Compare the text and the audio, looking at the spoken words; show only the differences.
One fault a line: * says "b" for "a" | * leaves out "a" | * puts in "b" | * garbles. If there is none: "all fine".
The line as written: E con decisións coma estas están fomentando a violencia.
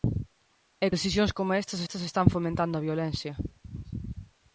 * leaves out "con"
* puts in "estas"